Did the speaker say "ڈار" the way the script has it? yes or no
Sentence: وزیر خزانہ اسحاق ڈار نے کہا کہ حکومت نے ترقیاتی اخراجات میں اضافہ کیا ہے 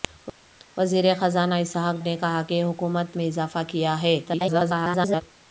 no